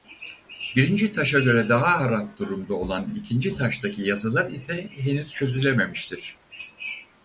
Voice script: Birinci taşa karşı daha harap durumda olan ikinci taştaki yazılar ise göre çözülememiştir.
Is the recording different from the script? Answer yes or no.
yes